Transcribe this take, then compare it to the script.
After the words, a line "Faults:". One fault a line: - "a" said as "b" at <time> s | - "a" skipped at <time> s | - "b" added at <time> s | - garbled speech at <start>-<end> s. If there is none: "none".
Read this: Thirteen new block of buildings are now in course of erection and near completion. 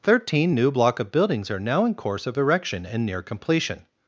Thirteen new block of buildings are now in course of erection and near completion.
Faults:
none